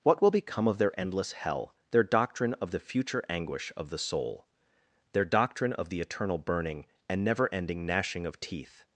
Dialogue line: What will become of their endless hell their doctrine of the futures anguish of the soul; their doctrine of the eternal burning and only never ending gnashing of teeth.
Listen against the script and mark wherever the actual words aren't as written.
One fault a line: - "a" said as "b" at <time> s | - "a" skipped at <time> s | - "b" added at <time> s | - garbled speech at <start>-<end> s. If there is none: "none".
- "futures" said as "future" at 2.8 s
- "only" skipped at 7.2 s